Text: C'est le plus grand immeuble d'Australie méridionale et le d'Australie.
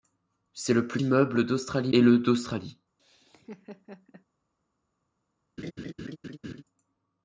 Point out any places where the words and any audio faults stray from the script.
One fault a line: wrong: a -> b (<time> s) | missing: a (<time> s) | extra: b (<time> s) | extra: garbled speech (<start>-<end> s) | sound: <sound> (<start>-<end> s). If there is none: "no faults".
missing: grand (1.0 s)
missing: méridionale (1.9 s)
sound: laugh (3.0-4.3 s)
sound: laugh (5.6-6.6 s)